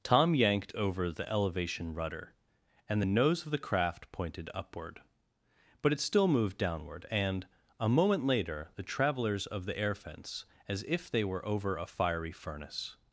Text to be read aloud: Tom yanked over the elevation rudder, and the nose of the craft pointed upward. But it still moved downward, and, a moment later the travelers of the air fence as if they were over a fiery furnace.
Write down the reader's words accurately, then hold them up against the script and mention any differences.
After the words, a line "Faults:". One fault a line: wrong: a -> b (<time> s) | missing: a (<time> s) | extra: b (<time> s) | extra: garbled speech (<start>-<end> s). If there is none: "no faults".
Tom yanked over the elevation rudder, and the nose of the craft pointed upward. But it still moved downward, and, a moment later the travelers of the air fence as if they were over a fiery furnace.
Faults:
no faults